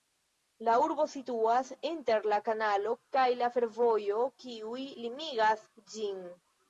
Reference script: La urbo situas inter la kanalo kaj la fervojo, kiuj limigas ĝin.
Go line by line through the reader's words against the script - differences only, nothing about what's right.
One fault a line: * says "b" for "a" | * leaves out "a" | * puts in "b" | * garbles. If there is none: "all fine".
all fine